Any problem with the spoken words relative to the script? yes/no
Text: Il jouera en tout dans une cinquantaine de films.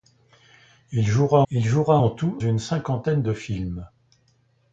yes